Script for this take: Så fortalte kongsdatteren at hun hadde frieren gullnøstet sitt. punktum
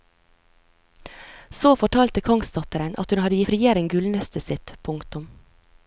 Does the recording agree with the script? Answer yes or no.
yes